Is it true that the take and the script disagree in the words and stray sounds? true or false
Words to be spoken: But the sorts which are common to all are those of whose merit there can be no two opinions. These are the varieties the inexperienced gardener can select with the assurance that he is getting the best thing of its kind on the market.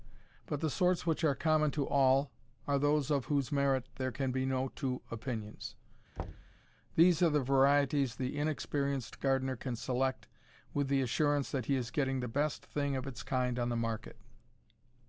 true